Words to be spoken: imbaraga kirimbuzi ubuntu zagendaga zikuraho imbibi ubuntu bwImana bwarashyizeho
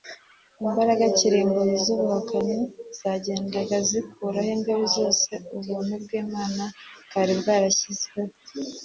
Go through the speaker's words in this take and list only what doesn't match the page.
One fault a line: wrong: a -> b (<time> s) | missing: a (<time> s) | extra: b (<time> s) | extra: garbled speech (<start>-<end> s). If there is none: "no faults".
wrong: ubuntu -> zubuhakanyi (1.9 s)
extra: zose (5.0 s)
extra: bwari (7.1 s)